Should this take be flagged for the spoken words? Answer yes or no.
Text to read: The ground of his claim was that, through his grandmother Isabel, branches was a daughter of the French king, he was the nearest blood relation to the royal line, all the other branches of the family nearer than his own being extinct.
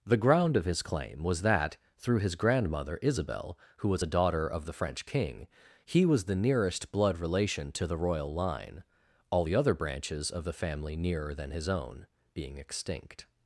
yes